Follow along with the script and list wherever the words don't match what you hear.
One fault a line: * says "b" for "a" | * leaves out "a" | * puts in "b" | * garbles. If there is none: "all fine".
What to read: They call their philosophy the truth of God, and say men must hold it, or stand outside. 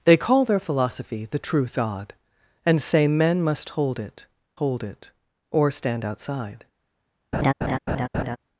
* leaves out "of"
* puts in "hold it"